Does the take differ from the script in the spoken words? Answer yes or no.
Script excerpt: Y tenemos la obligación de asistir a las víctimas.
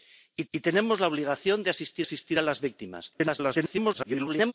yes